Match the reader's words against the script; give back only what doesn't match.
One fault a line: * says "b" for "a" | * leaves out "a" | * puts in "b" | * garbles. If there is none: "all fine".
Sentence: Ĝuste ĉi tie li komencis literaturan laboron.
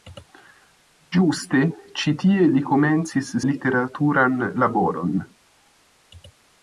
all fine